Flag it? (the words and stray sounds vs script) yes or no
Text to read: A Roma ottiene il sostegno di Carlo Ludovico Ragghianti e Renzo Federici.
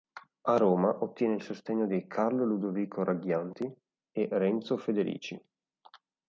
no